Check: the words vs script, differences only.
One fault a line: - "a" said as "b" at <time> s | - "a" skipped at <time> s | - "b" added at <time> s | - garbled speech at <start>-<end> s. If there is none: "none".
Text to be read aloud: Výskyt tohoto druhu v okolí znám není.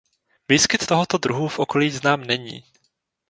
none